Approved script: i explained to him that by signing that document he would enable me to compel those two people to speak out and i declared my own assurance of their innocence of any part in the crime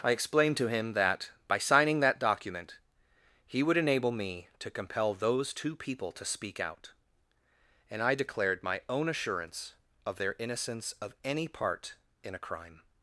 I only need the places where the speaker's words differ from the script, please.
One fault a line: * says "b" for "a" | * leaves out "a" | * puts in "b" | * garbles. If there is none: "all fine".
* says "a" for "the"